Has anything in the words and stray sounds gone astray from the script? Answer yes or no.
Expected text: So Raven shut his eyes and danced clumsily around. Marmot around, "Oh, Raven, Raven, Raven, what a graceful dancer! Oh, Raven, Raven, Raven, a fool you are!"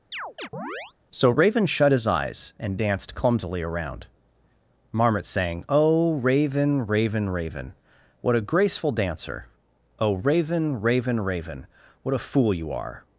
yes